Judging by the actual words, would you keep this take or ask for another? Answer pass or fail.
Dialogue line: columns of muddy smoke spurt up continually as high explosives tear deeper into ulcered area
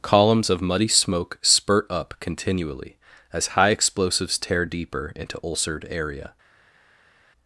pass